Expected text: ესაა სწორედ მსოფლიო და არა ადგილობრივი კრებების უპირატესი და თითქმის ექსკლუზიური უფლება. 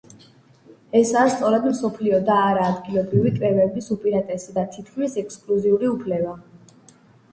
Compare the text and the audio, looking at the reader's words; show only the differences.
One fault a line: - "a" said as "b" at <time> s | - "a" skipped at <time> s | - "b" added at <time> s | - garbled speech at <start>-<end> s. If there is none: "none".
none